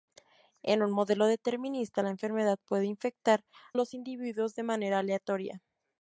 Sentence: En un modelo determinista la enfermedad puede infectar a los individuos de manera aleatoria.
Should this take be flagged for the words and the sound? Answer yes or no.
yes